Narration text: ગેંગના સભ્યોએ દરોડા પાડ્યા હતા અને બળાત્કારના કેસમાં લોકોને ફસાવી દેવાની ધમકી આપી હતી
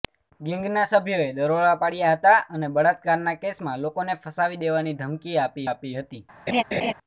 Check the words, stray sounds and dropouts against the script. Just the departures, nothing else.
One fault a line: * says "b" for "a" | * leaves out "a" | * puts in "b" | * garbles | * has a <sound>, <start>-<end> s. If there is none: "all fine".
* puts in "આપી"
* has a laugh, 6.5-6.9 s